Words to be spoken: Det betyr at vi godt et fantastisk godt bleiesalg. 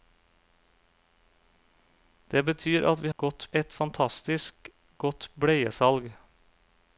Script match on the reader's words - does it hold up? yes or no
yes